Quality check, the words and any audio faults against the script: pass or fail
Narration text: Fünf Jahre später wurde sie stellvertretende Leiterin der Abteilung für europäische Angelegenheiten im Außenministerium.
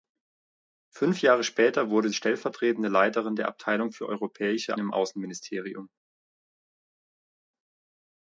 fail